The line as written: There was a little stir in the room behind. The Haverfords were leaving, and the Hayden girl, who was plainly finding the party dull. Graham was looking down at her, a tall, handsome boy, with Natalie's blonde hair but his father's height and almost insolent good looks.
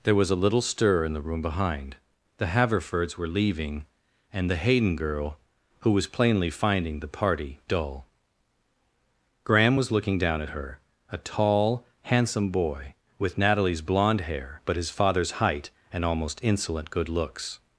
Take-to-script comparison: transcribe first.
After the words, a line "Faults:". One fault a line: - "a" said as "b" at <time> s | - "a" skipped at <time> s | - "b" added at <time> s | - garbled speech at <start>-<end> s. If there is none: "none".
There was a little stir in the room behind. The Haverfords were leaving, and the Hayden girl, who was plainly finding the party dull. Graham was looking down at her, a tall, handsome boy, with Natalie's blonde hair but his father's height and almost insolent good looks.
Faults:
none